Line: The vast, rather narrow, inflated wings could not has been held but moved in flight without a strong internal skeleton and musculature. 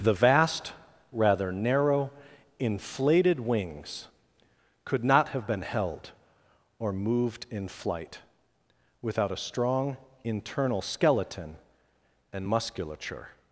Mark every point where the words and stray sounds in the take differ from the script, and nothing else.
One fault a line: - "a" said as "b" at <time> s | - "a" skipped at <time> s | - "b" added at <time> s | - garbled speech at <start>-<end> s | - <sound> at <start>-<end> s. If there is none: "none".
- "has" said as "have" at 5.3 s
- "but" said as "or" at 6.8 s